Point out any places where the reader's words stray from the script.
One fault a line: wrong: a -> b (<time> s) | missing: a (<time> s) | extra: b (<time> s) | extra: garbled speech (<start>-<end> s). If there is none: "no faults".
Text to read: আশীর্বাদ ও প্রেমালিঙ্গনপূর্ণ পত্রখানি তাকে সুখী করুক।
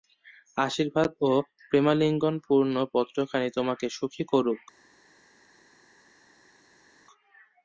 wrong: তাকে -> তোমাকে (3.6 s)